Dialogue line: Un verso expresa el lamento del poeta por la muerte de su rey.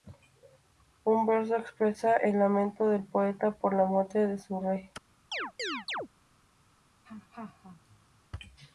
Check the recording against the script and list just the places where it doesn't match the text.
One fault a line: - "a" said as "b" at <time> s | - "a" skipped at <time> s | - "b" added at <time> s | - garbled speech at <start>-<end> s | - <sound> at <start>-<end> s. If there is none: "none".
- chirp at 5.3-6.1 s
- laugh at 7.0-8.2 s